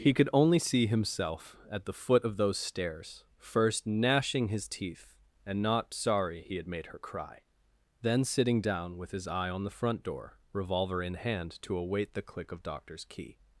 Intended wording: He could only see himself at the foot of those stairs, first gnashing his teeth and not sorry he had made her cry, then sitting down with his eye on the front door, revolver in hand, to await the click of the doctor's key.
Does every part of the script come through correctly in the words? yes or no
no